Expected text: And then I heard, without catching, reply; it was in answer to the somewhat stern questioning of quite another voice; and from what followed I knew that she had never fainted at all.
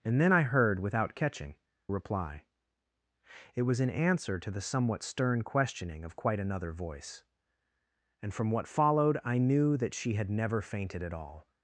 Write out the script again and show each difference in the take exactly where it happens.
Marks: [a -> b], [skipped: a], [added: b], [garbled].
And then I heard, without catching, reply; it was in answer to the somewhat stern questioning of quite another voice; and from what followed I knew that she had never fainted at all.